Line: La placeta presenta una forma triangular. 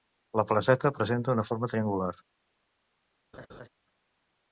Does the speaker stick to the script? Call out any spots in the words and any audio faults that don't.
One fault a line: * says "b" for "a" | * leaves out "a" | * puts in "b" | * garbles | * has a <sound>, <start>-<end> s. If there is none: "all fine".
* has a laugh, 3.3-3.7 s